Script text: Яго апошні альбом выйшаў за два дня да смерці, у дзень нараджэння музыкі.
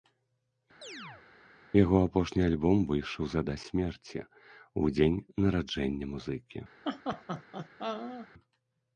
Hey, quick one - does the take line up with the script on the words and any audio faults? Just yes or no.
no